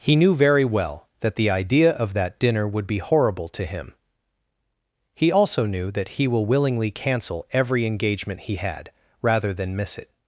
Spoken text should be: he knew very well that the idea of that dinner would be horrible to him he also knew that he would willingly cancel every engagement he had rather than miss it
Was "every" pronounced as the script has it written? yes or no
yes